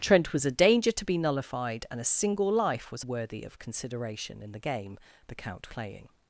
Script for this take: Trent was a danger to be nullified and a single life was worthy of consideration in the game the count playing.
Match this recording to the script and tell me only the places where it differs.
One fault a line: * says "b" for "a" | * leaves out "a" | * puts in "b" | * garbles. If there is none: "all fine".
all fine